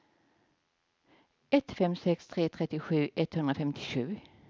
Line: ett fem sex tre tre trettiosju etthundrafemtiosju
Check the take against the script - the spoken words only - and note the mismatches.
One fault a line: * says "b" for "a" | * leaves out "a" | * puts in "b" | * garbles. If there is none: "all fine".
* leaves out "tre"